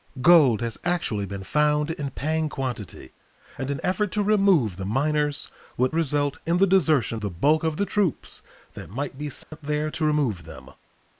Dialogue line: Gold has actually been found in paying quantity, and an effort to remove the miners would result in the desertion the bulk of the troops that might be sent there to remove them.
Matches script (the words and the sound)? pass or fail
fail